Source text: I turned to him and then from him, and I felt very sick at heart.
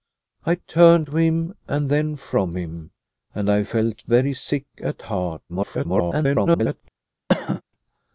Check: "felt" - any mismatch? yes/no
no